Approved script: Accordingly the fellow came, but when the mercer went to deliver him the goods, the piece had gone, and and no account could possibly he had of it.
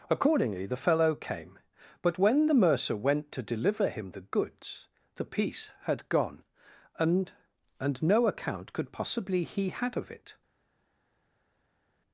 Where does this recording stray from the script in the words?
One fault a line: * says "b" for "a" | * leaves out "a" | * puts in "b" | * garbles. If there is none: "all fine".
all fine